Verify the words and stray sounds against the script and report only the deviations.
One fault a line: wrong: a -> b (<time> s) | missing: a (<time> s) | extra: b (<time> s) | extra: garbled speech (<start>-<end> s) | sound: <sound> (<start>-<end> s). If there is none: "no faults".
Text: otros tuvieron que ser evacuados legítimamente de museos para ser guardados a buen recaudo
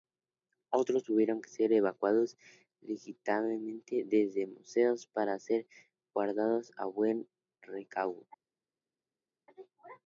wrong: de -> desde (4.1 s)